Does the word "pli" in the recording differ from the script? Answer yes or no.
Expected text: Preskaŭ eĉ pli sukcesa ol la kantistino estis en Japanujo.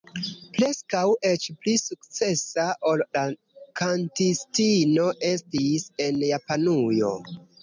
no